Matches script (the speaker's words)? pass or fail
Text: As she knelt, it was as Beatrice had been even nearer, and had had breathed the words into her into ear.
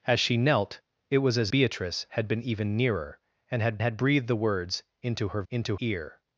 pass